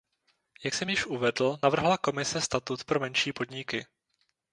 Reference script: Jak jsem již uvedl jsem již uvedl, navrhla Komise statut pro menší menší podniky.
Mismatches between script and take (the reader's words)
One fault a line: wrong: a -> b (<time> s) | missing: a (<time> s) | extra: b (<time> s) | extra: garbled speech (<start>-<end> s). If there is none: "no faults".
missing: jsem již uvedl (1.6 s)
missing: menší (3.3 s)